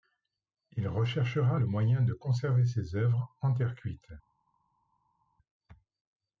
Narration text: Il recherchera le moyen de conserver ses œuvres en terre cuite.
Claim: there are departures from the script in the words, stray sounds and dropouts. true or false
false